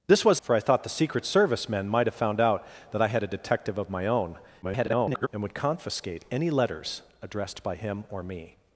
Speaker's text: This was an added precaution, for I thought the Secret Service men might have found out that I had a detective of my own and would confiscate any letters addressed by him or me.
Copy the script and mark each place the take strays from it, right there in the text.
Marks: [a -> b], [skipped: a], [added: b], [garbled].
This was [skipped: an added precaution,] for I thought the Secret Service men might have found out that I had a detective of my own [garbled] and would confiscate any letters addressed by him or me.